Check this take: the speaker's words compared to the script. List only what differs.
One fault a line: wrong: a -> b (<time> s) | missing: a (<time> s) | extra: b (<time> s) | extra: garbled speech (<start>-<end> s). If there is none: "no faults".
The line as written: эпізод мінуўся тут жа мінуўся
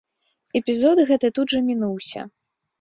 wrong: мінуўся -> гэты (1.1 s)